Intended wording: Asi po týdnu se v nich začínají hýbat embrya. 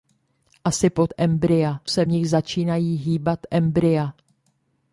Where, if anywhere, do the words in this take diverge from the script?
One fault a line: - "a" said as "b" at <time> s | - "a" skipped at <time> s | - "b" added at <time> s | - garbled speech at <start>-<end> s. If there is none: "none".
- "týdnu" said as "embrya" at 1.2 s